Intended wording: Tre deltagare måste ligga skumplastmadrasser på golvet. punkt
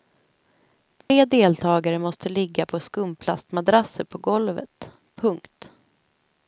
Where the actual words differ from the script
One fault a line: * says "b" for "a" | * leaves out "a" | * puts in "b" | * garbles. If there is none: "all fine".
* puts in "på"